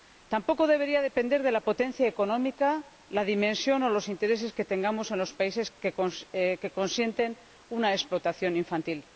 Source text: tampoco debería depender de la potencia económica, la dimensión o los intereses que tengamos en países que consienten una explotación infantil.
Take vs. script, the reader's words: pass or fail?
fail